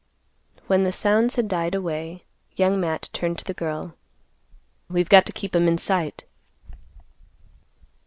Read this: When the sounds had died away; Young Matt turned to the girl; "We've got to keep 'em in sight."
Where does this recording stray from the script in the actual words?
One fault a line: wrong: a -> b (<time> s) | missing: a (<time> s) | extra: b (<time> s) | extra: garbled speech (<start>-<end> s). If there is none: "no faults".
no faults